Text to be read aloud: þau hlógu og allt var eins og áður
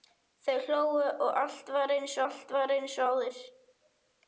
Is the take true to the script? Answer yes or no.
no